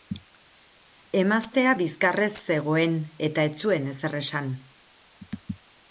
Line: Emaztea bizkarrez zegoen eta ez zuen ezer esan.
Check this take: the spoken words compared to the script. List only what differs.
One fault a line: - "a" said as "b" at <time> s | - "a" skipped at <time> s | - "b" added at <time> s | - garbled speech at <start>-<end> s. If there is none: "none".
none